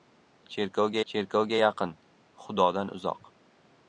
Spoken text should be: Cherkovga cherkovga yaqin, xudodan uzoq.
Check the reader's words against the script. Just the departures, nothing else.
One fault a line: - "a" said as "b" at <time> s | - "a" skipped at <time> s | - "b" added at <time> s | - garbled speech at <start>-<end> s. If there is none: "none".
none